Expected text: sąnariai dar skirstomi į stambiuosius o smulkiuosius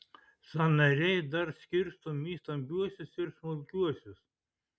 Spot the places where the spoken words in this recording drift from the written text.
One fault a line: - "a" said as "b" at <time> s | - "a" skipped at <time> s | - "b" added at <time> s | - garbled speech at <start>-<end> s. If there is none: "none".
- "o" said as "ir" at 3.2 s